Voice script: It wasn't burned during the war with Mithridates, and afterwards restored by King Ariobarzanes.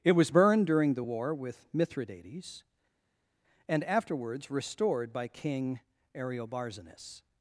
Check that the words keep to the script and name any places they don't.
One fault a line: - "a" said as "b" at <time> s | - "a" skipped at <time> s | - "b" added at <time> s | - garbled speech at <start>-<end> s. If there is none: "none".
- "wasn't" said as "was" at 0.1 s